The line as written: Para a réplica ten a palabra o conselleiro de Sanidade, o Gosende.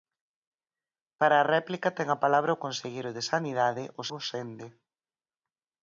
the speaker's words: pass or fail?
pass